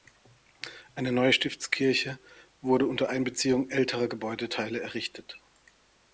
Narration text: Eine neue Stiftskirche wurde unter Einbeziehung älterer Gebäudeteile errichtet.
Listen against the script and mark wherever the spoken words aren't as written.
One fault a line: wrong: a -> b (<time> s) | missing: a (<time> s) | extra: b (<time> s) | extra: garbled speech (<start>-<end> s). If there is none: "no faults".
no faults